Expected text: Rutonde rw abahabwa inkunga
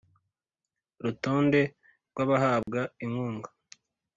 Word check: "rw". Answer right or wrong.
right